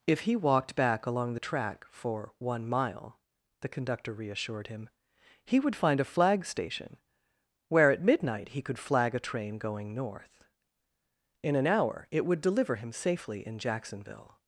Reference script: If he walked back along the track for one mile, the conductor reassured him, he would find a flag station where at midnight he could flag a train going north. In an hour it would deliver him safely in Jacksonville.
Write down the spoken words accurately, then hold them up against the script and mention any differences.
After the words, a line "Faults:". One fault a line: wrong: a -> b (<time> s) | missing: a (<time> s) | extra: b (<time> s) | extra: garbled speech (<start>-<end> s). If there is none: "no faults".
If he walked back along the track for one mile, the conductor reassured him, he would find a flag station where at midnight he could flag a train going north. In an hour it would deliver him safely in Jacksonville.
Faults:
no faults